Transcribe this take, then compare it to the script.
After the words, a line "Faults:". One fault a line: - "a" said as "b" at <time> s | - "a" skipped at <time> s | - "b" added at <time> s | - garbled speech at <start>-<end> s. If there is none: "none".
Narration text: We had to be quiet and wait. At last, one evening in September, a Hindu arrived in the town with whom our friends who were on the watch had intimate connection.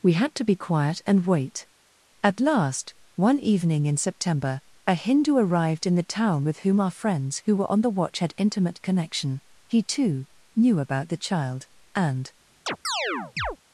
We had to be quiet and wait. At last, one evening in September, a Hindu arrived in the town with whom our friends who were on the watch had intimate connection. He, too, knew about the child; and
Faults:
- "He too knew about the child and" added at 9.7 s